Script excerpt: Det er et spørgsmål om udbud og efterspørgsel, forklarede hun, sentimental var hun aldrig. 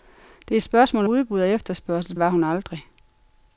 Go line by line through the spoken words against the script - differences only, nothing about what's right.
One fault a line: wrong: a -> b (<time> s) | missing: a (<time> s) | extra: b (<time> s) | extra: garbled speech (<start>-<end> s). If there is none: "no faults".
missing: om (1.1 s)
missing: forklarede hun sentimental (2.2 s)